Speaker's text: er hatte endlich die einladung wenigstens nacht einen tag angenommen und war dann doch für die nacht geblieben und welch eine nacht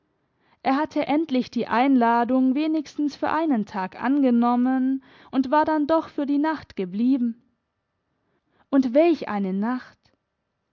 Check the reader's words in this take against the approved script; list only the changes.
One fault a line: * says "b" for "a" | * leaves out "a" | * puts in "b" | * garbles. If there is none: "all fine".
* says "für" for "nacht"